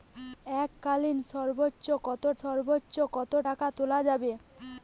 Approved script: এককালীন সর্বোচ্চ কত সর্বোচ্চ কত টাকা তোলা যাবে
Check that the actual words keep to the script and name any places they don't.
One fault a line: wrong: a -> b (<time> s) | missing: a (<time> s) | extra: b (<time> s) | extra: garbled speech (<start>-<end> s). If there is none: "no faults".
no faults